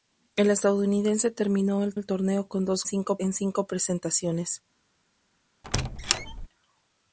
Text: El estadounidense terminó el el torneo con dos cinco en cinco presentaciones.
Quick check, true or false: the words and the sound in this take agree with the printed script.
false